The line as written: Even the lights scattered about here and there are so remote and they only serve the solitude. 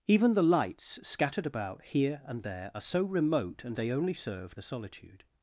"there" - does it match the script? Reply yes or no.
yes